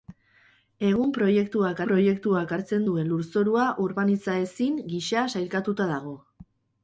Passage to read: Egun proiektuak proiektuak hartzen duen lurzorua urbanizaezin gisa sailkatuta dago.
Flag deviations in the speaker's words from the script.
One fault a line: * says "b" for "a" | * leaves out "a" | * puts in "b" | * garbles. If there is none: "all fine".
all fine